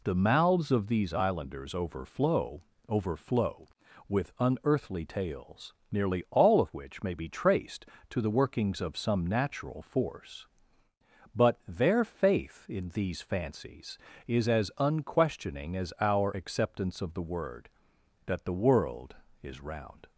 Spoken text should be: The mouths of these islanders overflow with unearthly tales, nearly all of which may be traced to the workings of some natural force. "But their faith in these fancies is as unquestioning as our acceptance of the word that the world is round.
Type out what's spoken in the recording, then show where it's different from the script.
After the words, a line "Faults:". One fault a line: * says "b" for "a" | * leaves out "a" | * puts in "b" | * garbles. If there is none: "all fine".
The mouths of these islanders overflow overflow with unearthly tales, nearly all of which may be traced to the workings of some natural force. "But their faith in these fancies is as unquestioning as our acceptance of the word that the world is round.
Faults:
* puts in "overflow"